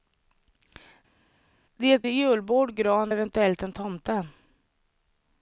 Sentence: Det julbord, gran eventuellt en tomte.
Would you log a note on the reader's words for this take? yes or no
no